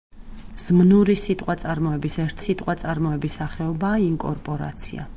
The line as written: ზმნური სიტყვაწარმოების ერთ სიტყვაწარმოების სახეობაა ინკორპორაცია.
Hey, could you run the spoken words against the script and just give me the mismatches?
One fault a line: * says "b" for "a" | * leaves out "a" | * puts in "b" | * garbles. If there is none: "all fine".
all fine